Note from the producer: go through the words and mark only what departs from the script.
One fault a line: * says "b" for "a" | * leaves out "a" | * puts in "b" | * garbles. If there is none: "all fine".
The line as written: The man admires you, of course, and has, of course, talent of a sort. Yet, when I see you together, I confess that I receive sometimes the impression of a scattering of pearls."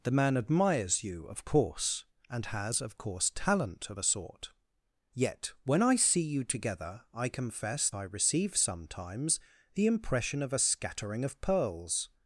* leaves out "that"